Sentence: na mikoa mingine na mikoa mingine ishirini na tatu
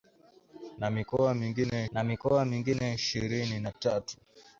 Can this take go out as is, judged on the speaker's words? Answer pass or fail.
pass